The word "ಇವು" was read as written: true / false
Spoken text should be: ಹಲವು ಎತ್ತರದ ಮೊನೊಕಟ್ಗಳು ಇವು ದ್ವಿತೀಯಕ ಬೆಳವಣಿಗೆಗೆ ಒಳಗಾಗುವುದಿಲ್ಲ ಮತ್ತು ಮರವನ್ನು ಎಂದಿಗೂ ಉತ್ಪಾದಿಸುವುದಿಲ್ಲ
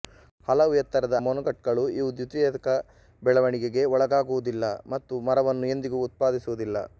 true